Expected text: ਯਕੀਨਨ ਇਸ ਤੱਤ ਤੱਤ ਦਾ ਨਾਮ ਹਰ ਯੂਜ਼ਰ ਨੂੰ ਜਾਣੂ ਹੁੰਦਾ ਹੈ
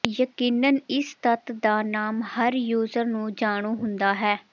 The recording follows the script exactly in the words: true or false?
false